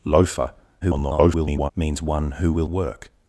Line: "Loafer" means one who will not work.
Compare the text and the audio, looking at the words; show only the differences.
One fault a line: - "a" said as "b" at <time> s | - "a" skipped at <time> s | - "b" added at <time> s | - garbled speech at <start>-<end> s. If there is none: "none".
- garbled speech at 0.8-1.7 s
- "not" skipped at 2.7 s